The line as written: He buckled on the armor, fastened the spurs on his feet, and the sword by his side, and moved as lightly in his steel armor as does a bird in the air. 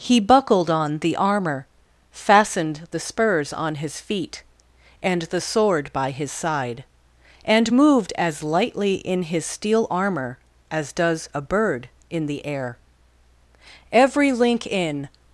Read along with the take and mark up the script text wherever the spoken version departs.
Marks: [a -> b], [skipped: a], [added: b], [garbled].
He buckled on the armor, fastened the spurs on his feet, and the sword by his side, and moved as lightly in his steel armor as does a bird in the air. [added: Every link in]